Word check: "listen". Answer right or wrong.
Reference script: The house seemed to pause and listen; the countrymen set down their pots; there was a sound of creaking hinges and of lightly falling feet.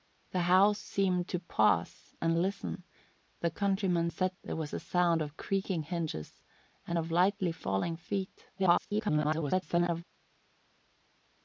right